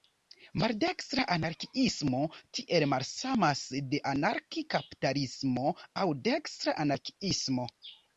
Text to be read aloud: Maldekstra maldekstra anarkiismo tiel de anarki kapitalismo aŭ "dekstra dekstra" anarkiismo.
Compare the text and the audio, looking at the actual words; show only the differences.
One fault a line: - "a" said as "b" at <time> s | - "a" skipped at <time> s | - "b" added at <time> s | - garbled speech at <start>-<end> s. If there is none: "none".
- "maldekstra" skipped at 1.2 s
- "malsamas" added at 2.9 s
- "dekstra" skipped at 6.8 s